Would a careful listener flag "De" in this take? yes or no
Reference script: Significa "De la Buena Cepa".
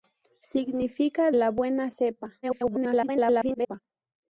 yes